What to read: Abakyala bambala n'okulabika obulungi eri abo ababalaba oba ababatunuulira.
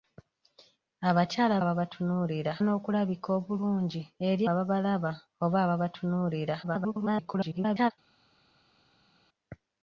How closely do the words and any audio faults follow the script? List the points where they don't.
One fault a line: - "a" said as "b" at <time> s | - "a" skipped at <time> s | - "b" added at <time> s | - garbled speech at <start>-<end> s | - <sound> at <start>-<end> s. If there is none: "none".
- "bambala" said as "ababatunuulira" at 1.6 s
- "abo" skipped at 4.4 s
- garbled speech at 6.6-7.9 s